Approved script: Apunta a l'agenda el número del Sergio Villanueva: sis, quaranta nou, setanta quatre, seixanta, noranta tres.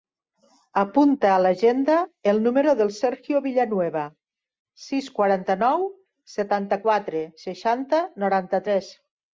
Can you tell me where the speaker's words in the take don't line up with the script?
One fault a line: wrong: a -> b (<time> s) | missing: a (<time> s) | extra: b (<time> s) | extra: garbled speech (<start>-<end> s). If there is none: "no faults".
no faults